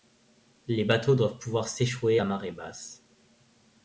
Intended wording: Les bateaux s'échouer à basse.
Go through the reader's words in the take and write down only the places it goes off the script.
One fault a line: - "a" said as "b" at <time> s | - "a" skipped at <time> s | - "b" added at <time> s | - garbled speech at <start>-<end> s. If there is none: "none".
- "doivent pouvoir" added at 1.1 s
- "marée" added at 2.2 s